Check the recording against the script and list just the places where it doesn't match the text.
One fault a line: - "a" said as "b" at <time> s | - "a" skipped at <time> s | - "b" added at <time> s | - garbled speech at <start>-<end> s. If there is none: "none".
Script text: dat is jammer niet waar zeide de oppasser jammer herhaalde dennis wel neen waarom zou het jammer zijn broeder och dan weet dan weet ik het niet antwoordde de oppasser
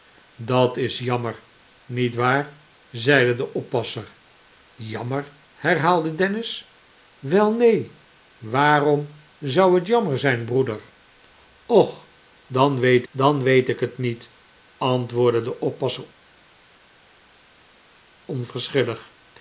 none